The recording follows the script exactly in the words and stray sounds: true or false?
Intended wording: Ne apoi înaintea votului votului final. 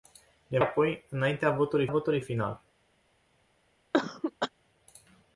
false